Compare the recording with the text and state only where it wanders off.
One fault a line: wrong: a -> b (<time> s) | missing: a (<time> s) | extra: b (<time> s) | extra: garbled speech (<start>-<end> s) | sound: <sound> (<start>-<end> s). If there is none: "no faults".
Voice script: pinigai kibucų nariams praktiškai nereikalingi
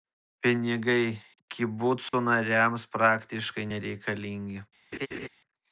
sound: dropout (2.1-2.1 s)
sound: laugh (4.9-5.3 s)